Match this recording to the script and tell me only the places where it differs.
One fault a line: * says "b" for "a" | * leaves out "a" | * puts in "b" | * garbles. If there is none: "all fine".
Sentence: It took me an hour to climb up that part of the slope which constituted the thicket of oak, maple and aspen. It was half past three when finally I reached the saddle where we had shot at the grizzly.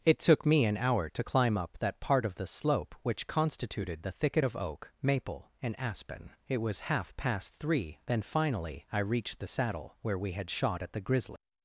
* says "then" for "when"